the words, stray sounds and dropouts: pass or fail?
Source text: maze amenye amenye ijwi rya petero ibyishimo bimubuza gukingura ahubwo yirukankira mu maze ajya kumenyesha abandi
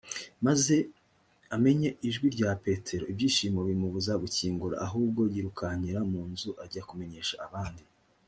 fail